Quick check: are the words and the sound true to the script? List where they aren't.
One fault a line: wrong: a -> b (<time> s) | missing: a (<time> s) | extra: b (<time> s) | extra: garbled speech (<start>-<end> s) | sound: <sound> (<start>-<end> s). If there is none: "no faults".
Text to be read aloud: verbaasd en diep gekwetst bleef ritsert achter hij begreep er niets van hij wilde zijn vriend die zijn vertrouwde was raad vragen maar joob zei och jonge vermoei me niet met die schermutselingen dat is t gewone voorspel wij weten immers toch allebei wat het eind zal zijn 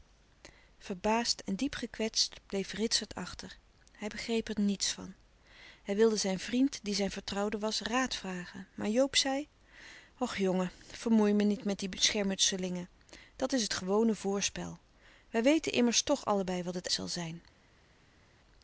missing: eind (16.9 s)